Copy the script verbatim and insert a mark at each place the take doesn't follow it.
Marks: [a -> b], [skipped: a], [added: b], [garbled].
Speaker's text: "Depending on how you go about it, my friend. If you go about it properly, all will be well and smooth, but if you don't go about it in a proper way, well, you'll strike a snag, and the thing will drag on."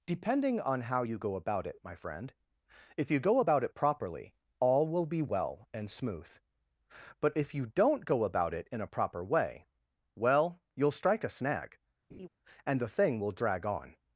"Depending on how you go about it, my friend. If you go about it properly, all will be well and smooth, but if you don't go about it in a proper way, well, you'll strike a snag, and the thing will drag on."